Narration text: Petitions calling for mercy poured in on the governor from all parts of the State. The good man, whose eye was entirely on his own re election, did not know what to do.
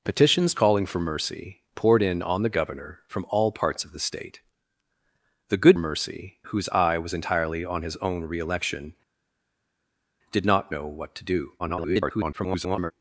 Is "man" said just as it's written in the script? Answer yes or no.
no